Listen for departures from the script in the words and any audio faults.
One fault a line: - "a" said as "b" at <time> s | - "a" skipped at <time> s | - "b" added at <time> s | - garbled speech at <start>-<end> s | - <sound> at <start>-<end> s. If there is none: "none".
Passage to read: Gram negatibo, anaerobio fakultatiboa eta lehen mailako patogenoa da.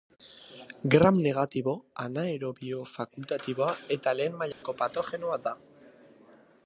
- dropout at 4.5-4.6 s